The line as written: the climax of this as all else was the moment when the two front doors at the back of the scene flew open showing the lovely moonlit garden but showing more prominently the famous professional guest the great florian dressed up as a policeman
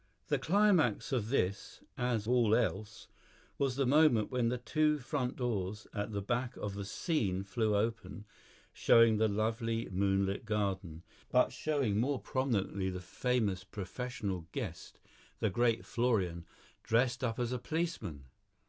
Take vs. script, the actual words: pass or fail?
pass